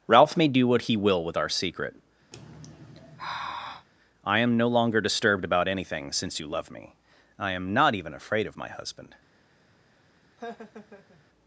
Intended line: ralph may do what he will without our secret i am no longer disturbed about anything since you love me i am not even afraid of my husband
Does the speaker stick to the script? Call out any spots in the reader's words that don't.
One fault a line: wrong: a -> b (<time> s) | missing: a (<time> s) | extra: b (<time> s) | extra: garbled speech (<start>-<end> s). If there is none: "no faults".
wrong: without -> with (1.2 s)